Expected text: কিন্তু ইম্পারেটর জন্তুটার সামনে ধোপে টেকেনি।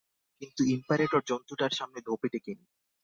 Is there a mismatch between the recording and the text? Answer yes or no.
no